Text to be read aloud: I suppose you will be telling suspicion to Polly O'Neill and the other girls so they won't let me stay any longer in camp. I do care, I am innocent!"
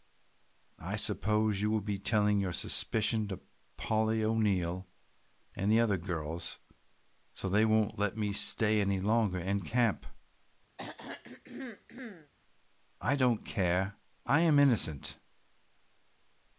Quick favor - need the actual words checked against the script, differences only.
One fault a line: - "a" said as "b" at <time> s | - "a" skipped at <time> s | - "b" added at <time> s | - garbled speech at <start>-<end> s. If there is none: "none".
- "your" added at 2.4 s
- "do" said as "don't" at 13.1 s